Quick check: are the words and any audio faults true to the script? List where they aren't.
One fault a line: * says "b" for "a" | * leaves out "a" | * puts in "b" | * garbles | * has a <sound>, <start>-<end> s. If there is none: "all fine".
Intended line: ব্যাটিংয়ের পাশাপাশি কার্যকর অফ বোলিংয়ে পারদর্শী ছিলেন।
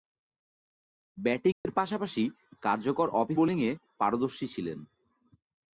* has a dropout, 1.5-1.7 s